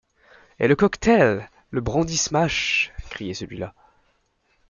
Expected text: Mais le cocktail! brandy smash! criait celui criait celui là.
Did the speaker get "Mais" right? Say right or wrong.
wrong